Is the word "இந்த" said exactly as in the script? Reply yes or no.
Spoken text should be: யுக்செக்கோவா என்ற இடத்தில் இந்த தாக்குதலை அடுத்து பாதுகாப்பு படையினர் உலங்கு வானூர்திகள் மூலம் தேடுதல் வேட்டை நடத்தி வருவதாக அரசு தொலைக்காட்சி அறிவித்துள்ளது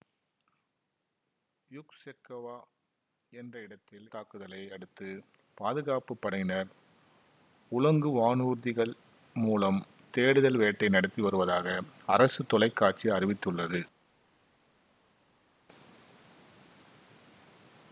no